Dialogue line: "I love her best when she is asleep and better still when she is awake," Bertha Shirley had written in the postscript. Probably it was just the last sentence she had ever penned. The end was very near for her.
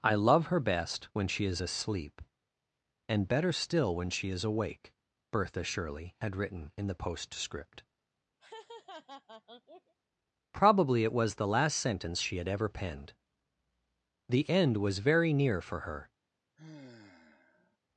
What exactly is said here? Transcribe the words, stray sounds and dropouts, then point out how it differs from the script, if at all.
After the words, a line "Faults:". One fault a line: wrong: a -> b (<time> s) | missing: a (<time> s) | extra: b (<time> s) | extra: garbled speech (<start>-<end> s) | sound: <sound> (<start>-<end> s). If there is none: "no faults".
"I love her best when she is asleep and better still when she is awake," Bertha Shirley had written in the postscript. Probably it was the last sentence she had ever penned. The end was very near for her.
Faults:
sound: laugh (8.4-9.9 s)
missing: just (11.4 s)
sound: sigh (16.6-17.8 s)